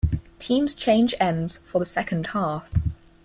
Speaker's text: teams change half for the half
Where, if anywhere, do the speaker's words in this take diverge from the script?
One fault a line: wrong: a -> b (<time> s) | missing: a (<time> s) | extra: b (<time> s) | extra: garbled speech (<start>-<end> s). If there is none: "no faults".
wrong: half -> ends (1.2 s)
extra: second (1.8 s)